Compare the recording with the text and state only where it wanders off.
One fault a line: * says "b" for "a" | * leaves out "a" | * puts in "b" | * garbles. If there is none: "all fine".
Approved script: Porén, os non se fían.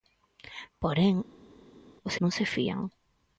all fine